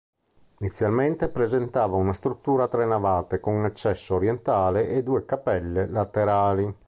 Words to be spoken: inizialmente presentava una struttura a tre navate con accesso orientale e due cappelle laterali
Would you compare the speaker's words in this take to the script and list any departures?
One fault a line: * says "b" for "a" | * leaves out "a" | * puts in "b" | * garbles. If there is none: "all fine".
all fine